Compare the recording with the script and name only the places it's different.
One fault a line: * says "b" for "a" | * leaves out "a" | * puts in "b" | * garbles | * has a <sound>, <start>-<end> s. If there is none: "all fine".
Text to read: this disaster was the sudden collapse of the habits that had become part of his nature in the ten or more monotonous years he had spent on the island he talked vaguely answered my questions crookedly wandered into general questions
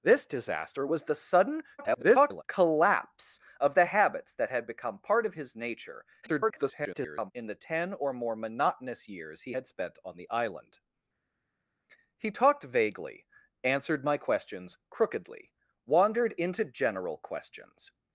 * garbles
* garbles